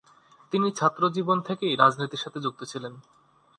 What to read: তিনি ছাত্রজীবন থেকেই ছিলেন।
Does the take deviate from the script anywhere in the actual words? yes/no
yes